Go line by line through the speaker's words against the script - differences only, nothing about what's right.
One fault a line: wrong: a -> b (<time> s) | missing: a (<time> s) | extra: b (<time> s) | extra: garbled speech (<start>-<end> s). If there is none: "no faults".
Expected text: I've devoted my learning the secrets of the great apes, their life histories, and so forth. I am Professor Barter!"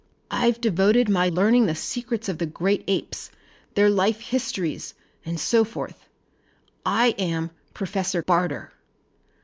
no faults